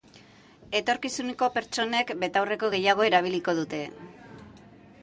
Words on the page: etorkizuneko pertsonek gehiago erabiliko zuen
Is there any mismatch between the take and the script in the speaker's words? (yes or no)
yes